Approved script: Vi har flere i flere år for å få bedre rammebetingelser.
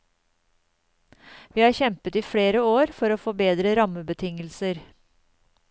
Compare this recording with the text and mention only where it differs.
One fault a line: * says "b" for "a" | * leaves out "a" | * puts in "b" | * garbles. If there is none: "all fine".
* says "kjempet" for "flere"